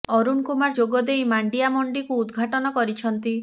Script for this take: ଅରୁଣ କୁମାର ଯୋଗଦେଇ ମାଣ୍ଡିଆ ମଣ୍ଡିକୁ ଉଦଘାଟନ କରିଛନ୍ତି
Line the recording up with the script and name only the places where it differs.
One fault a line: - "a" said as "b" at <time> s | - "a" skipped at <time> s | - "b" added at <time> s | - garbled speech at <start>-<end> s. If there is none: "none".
none